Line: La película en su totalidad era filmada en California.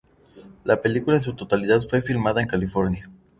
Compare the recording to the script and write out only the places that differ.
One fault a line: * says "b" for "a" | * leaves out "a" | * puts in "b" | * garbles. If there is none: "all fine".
* says "fue" for "era"